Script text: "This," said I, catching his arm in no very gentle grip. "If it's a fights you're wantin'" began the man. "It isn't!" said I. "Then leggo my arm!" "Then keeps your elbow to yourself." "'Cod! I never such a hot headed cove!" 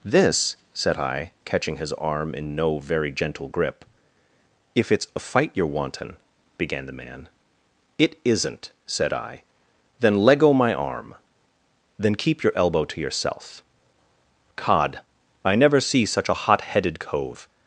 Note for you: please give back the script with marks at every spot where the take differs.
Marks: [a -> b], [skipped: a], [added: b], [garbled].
"This," said I, catching his arm in no very gentle grip. "If it's a [fights -> fight] you're wantin'" began the man. "It isn't!" said I. "Then leggo my arm!" "Then [keeps -> keep] your elbow to yourself." "'Cod! I never [added: see] such a hot headed cove!"